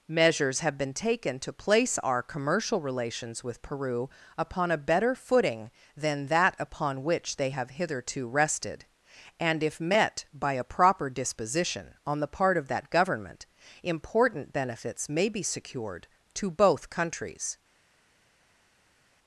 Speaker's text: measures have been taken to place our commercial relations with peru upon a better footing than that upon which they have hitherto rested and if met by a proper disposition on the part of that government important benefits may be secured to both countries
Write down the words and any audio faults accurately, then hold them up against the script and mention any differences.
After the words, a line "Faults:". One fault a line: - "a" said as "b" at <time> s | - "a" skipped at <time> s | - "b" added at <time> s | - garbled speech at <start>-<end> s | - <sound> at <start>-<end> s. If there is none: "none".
measures have been taken to place our commercial relations with peru upon a better footing than that upon which they have hitherto rested and if met by a proper disposition on the part of that government important benefits may be secured to both countries
Faults:
none